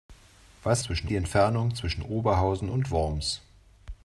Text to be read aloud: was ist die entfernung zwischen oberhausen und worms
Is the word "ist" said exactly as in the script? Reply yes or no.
no